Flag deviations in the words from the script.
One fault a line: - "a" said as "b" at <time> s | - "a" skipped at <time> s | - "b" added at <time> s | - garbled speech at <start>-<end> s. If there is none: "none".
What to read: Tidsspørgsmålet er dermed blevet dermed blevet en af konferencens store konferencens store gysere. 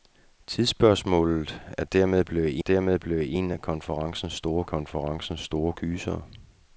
none